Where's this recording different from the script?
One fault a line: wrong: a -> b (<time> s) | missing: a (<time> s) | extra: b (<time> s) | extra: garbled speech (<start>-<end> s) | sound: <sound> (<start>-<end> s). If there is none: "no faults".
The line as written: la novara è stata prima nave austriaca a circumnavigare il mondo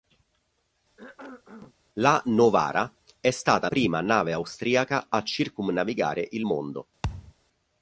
sound: cough (1.0-1.7 s)
sound: thud (7.0-7.3 s)